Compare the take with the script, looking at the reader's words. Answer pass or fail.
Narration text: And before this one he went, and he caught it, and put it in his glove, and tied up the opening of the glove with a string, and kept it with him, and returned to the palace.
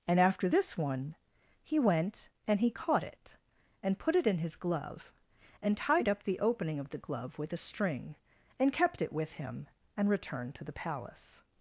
fail